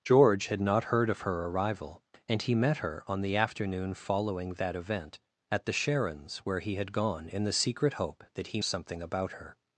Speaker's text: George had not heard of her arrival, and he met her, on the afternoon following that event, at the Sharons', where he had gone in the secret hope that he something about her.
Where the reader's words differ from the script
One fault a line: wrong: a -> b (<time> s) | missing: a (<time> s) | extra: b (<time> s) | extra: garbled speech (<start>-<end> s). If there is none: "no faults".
no faults